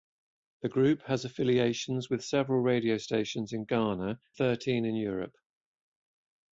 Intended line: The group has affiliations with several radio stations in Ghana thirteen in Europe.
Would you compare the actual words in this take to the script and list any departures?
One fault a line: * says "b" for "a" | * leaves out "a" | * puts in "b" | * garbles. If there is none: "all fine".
all fine